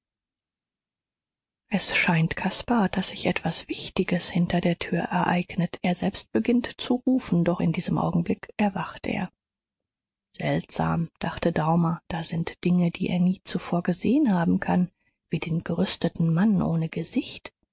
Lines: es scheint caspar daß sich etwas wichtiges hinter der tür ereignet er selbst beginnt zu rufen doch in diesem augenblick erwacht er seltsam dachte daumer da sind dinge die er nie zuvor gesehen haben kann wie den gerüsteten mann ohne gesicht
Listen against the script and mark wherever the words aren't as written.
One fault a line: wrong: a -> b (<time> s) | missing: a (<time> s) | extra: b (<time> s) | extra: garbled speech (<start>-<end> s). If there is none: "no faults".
no faults